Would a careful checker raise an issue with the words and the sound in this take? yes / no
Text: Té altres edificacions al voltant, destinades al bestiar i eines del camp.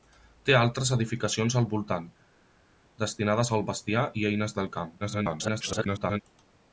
yes